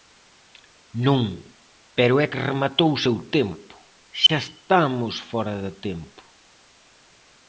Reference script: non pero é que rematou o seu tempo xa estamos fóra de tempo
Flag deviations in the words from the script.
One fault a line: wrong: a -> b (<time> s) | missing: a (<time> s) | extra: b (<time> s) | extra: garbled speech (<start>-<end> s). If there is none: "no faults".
no faults